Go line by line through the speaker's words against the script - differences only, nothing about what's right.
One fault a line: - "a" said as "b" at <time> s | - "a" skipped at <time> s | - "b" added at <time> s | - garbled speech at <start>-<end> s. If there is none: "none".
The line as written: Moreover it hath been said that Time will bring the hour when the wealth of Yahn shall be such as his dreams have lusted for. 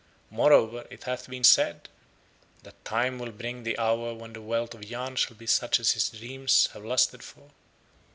none